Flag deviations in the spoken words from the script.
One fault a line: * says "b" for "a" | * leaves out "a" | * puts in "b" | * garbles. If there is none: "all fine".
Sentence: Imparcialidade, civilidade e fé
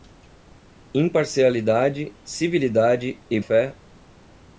all fine